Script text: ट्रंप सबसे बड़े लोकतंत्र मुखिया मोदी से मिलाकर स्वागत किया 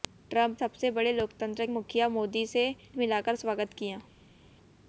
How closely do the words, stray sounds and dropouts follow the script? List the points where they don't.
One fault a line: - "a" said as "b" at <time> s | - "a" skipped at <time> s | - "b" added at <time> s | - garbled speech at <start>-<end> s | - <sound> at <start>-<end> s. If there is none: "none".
none